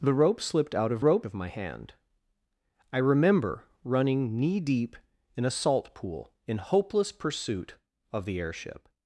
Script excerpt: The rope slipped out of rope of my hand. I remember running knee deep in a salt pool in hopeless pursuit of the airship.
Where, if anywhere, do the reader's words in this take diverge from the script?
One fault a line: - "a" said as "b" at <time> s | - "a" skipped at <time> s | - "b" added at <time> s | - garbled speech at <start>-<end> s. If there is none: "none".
none